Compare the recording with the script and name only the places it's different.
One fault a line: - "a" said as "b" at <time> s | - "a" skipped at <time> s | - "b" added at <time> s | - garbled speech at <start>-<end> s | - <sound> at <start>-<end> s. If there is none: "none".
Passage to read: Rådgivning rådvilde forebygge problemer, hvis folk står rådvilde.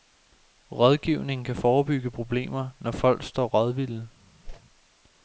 - "rådvilde" said as "kan" at 1.4 s
- "hvis" said as "når" at 2.8 s
- whoosh at 4.4-4.6 s